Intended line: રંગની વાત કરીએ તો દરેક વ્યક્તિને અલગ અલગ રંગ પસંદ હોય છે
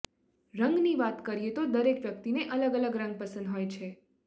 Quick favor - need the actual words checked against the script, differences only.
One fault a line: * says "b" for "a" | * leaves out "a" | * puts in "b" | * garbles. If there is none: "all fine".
all fine